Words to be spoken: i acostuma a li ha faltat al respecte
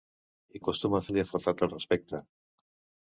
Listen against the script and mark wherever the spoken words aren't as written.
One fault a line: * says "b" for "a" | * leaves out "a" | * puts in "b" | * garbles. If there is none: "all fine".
all fine